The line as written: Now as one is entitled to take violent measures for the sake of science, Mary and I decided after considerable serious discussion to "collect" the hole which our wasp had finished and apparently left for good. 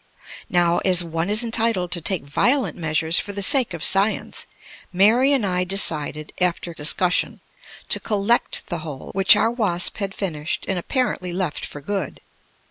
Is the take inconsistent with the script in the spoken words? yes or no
yes